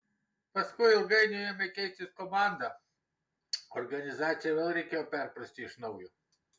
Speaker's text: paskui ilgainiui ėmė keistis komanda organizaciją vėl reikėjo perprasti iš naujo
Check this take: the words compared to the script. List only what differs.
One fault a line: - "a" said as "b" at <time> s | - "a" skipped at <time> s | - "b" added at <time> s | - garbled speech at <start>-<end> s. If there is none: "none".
none